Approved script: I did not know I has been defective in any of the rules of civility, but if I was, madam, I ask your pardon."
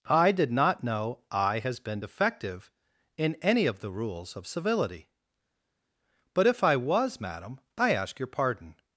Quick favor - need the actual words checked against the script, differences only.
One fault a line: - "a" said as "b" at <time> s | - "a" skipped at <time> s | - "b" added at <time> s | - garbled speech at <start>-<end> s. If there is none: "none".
none